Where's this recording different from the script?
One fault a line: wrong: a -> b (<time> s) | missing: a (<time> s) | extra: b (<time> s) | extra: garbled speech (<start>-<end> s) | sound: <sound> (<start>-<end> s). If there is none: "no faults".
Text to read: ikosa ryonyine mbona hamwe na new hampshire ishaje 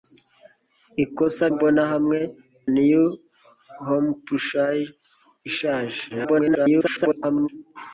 missing: ryonyine (1.4 s)
missing: na (2.2 s)
extra: garbled speech (6.1-7.5 s)